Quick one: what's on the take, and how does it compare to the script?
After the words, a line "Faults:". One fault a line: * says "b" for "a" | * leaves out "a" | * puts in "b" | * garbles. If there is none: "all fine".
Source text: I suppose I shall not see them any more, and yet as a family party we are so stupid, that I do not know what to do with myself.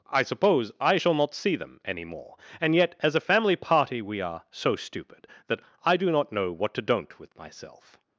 I suppose I shall not see them any more, and yet as a family party we are so stupid, that I do not know what to don't with myself.
Faults:
* says "don't" for "do"